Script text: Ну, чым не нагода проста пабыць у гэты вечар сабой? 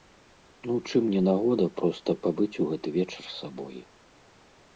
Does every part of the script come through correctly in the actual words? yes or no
yes